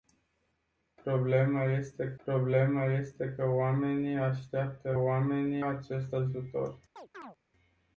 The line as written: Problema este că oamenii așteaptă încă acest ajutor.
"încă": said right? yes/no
no